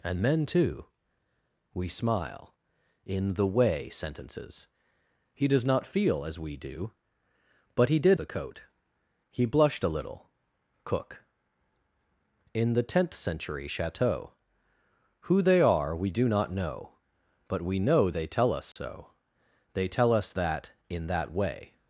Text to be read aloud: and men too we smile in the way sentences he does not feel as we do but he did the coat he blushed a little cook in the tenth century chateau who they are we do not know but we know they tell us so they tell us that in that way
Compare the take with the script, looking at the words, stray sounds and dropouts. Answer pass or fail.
fail